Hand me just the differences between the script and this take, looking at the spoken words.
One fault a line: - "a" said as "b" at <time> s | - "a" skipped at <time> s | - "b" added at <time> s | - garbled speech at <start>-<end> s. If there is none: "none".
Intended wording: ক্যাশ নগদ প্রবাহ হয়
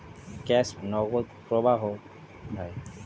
none